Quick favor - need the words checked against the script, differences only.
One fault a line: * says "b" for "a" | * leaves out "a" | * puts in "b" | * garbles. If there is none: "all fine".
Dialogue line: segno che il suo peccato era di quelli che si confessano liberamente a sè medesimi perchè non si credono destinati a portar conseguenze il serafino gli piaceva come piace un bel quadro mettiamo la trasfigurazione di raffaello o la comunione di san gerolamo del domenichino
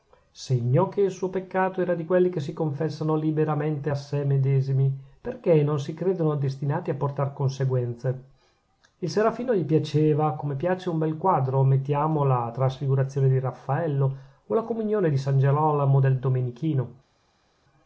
all fine